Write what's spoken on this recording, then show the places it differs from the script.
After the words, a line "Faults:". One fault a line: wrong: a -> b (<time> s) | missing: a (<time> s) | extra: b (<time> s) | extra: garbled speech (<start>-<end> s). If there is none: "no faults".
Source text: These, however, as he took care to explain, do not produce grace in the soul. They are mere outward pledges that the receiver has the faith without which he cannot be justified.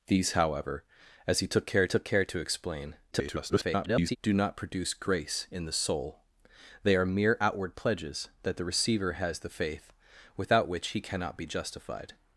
These, however, as he took care took care to explain, [garbled] do not produce grace in the soul. They are mere outward pledges that the receiver has the faith without which he cannot be justified.
Faults:
extra: took care (1.9 s)
extra: garbled speech (3.1-4.2 s)